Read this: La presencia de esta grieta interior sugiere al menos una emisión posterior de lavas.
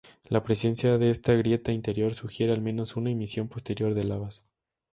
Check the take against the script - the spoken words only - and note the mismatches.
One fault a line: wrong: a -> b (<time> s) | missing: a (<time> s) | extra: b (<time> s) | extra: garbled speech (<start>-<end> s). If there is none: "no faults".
no faults